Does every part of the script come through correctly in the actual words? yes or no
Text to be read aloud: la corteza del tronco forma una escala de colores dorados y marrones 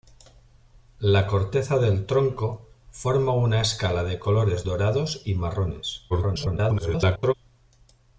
no